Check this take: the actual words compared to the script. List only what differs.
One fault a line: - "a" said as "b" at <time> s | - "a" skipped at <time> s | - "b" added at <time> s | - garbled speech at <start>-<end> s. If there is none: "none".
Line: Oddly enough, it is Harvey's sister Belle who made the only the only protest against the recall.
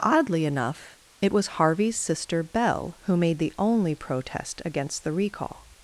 - "is" said as "was" at 1.3 s
- "the only" skipped at 3.9 s